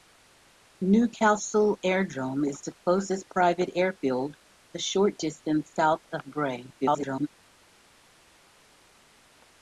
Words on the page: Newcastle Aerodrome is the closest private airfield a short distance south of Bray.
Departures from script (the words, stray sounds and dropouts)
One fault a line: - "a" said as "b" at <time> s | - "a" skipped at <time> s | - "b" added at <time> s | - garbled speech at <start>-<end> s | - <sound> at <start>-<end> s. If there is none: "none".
- garbled speech at 6.8-7.3 s